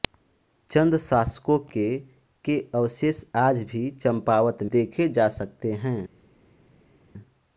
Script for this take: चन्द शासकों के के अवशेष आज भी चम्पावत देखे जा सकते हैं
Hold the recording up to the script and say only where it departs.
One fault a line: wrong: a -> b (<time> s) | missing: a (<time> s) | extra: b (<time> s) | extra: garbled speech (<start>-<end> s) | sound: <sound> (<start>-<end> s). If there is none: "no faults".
no faults